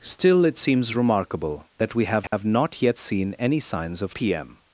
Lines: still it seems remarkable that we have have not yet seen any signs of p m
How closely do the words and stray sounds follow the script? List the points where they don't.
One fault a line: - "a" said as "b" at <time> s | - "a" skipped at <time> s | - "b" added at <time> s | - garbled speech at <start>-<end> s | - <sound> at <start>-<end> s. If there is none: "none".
- dropout at 2.3-2.3 s